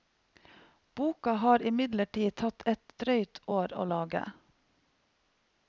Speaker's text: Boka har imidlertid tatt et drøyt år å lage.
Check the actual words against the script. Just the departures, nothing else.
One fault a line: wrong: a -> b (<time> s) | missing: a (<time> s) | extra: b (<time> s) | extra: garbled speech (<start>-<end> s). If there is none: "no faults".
no faults